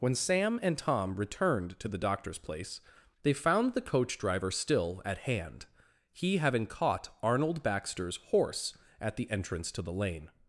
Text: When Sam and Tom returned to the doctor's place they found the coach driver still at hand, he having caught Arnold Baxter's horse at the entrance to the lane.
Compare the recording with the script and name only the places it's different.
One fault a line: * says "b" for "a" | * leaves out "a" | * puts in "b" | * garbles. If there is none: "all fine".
all fine